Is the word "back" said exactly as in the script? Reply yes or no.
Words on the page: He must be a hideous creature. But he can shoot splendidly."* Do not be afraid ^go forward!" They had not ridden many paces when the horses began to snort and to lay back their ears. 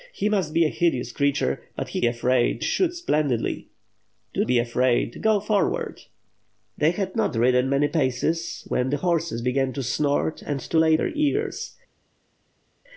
no